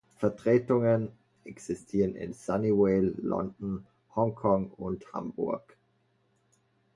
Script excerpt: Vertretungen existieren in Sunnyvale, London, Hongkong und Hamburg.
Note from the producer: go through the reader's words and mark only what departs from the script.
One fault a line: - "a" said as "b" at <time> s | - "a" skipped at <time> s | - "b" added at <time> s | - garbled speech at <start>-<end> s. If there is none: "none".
none